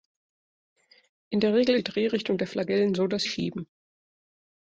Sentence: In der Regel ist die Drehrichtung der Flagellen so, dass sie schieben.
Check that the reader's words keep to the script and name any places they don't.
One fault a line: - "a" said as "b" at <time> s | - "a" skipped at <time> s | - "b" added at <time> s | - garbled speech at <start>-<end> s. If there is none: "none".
- "ist" skipped at 1.8 s
- "sie" skipped at 3.2 s